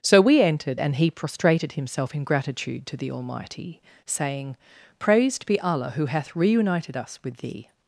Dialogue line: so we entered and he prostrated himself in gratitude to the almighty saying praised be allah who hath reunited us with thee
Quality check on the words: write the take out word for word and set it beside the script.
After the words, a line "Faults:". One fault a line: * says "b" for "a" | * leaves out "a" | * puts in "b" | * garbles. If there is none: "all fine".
so we entered and he prostrated himself in gratitude to the almighty saying praised be allah who hath reunited us with thee
Faults:
all fine